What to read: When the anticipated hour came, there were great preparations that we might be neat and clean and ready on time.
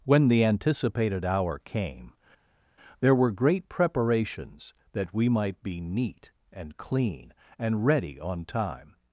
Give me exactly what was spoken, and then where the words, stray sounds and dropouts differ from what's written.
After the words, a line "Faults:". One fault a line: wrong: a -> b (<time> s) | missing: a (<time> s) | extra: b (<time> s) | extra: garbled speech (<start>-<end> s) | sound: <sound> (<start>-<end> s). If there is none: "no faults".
When the anticipated hour came, there were great preparations that we might be neat and clean and ready on time.
Faults:
no faults